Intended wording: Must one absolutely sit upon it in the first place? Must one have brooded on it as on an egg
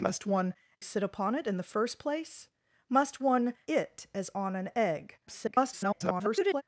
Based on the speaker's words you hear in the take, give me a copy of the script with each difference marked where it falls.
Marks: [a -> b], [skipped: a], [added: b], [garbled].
Must one [skipped: absolutely] sit upon it in the first place? Must one [skipped: have brooded on] it as on an egg [garbled]